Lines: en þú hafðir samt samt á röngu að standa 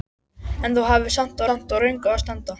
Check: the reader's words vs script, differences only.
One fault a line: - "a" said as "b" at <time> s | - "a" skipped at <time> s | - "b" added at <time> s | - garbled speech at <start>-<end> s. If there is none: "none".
none